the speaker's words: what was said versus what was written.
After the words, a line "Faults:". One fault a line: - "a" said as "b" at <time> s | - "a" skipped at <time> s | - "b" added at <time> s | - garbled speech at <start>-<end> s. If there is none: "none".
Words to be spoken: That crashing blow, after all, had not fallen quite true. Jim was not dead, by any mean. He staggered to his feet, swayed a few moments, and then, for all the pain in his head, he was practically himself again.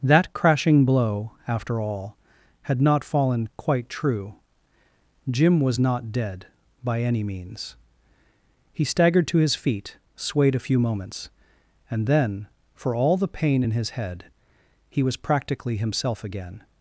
That crashing blow, after all, had not fallen quite true. Jim was not dead, by any means. He staggered to his feet, swayed a few moments, and then, for all the pain in his head, he was practically himself again.
Faults:
- "mean" said as "means" at 7.2 s